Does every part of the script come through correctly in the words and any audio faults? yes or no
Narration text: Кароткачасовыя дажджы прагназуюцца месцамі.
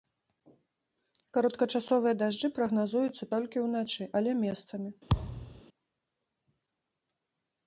no